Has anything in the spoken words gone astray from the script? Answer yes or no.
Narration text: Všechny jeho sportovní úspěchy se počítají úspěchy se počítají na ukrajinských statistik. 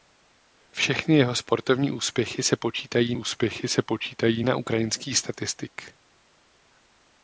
no